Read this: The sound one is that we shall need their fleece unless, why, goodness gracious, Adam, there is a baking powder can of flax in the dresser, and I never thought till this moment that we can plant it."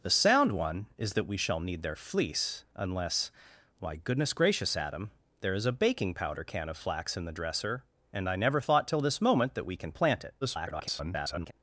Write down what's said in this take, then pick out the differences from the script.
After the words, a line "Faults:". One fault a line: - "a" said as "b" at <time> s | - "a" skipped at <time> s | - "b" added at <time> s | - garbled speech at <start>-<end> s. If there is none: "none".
The sound one is that we shall need their fleece unless, why, goodness gracious, Adam, there is a baking powder can of flax in the dresser, and I never thought till this moment that we can plant it." [garbled]
Faults:
- garbled speech at 10.4-11.5 s